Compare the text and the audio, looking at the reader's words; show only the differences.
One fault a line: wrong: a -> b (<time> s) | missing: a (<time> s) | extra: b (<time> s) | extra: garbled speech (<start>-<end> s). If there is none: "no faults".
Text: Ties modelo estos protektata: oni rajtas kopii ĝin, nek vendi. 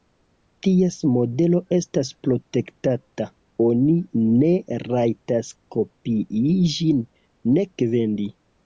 wrong: estos -> estas (1.8 s)
extra: ne (4.4 s)